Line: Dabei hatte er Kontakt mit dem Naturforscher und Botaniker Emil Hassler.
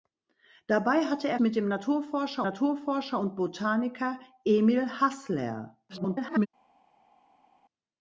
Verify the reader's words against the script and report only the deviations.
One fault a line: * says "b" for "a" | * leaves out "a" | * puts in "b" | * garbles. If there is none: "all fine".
* leaves out "Kontakt"
* puts in "Naturforscher"
* garbles